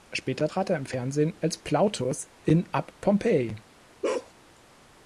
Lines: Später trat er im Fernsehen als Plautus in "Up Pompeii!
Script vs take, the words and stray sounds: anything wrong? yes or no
yes